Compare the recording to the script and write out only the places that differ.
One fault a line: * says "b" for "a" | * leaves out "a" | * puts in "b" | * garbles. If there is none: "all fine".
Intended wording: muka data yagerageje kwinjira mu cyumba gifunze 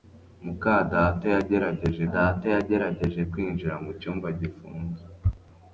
* puts in "data yagerageje"